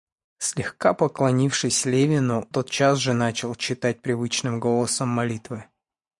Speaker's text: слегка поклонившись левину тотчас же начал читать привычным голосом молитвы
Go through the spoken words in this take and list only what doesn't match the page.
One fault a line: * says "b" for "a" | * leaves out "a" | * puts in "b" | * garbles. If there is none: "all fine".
all fine